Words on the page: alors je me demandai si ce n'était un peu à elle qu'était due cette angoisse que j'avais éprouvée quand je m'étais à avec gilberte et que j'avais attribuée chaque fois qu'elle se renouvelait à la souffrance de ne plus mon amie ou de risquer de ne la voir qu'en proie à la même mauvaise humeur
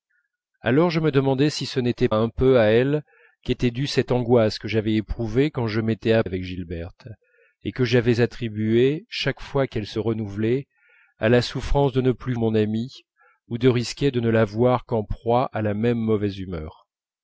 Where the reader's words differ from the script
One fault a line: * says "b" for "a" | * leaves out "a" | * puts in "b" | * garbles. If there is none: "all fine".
all fine